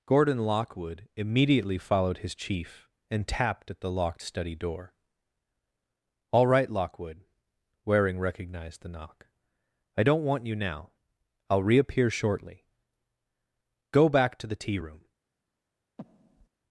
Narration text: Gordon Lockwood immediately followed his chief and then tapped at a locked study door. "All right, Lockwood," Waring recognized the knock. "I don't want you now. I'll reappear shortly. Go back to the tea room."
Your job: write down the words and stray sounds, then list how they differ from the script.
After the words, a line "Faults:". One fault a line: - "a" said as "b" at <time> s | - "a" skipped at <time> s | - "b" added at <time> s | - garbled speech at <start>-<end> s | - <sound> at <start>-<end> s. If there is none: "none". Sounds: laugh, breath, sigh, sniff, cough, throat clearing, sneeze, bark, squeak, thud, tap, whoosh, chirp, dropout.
Gordon Lockwood immediately followed his chief and tapped at the locked study door. "All right, Lockwood," Waring recognized the knock. "I don't want you now. I'll reappear shortly. Go back to the tea room."
Faults:
- "then" skipped at 3.3 s
- "a" said as "the" at 3.8 s
- breath at 16.0-16.5 s